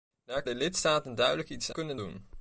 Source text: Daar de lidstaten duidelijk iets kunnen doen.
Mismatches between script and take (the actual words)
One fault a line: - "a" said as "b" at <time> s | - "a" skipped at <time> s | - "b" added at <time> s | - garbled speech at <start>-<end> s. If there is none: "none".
none